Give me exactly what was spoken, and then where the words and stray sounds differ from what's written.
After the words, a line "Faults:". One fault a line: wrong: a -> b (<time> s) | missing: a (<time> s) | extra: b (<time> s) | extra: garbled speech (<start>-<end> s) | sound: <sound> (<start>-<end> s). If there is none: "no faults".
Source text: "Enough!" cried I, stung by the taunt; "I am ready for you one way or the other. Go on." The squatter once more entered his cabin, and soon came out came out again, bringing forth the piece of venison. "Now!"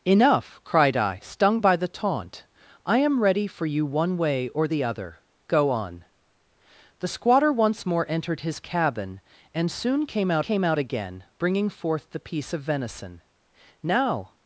"Enough!" cried I, stung by the taunt; "I am ready for you one way or the other. Go on." The squatter once more entered his cabin, and soon came out came out again, bringing forth the piece of venison. "Now!"
Faults:
no faults